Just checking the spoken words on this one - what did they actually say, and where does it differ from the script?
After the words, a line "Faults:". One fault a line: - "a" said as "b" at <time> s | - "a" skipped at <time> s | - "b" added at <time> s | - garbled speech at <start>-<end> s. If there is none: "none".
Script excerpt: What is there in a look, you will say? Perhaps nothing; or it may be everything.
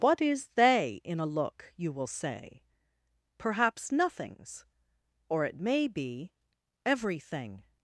What is they in a look, you will say? Perhaps nothings; or it may be everything.
Faults:
- "there" said as "they" at 0.6 s
- "nothing" said as "nothings" at 3.9 s